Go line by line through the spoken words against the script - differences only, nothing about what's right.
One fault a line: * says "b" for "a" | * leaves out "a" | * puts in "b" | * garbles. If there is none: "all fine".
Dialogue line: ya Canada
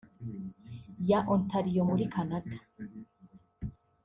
* puts in "Ontario muri"